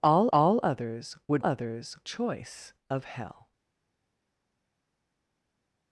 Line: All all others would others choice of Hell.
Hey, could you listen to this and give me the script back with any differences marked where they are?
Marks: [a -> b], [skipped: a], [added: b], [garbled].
All all others would others choice of Hell.